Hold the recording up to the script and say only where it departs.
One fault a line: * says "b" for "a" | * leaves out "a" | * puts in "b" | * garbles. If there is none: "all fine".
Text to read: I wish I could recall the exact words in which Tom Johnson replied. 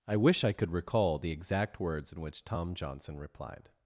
all fine